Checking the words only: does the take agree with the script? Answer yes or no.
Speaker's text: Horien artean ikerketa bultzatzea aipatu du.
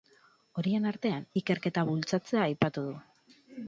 yes